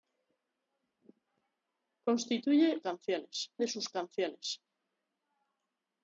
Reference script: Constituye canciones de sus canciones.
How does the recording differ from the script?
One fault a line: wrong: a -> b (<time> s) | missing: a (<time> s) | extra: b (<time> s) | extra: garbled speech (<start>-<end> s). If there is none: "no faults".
no faults